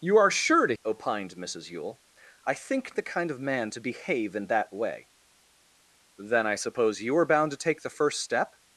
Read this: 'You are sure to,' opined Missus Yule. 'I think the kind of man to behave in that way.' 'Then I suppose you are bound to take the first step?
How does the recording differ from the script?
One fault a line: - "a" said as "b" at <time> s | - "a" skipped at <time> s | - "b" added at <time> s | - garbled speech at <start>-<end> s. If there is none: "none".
none